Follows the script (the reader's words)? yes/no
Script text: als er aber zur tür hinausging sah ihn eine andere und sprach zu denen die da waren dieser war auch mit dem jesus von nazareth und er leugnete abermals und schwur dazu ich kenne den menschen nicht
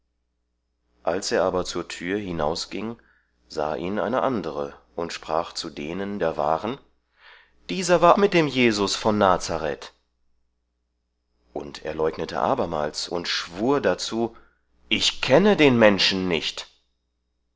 no